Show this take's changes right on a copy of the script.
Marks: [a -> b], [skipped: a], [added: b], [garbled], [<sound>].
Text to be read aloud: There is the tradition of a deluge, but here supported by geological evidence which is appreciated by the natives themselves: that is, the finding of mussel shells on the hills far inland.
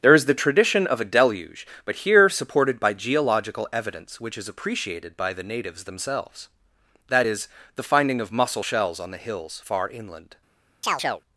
There is the tradition of a deluge, but here supported by geological evidence which is appreciated by the natives themselves: that is, the finding of mussel shells on the hills far inland. [chirp]